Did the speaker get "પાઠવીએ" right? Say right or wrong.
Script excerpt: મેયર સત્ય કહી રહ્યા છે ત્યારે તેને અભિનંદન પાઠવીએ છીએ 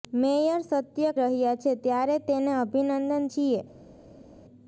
wrong